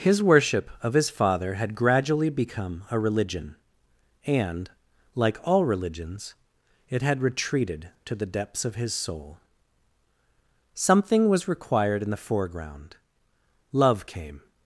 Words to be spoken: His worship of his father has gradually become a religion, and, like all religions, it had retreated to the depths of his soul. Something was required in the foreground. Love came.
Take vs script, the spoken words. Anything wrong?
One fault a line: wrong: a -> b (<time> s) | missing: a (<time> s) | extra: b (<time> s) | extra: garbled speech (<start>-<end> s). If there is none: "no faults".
wrong: has -> had (1.5 s)